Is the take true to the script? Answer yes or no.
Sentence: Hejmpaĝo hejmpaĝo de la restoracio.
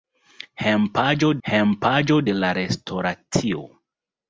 yes